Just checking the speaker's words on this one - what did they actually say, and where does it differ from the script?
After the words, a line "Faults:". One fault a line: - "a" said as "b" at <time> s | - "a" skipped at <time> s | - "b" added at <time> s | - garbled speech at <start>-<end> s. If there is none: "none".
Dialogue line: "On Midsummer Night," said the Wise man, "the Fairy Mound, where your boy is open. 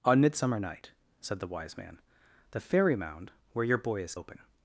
"On Midsummer Night," said the Wise man, "the Fairy Mound, where your boy is open.
Faults:
none